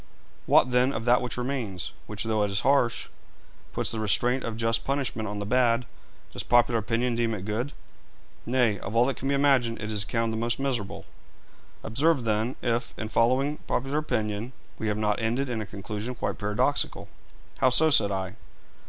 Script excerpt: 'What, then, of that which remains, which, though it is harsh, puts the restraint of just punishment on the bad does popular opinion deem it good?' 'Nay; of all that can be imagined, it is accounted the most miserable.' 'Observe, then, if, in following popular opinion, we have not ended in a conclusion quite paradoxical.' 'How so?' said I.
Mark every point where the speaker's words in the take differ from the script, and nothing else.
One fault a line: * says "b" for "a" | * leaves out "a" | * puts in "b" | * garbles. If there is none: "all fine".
all fine